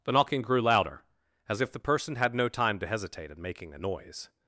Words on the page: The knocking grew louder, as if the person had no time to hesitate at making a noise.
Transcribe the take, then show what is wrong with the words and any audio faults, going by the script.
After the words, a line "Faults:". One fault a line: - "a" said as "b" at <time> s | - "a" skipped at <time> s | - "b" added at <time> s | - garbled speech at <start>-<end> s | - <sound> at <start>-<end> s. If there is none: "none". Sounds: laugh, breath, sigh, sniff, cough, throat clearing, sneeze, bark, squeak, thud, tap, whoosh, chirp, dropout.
The knocking grew louder, as if the person had no time to hesitate in making a noise.
Faults:
- "at" said as "in" at 3.3 s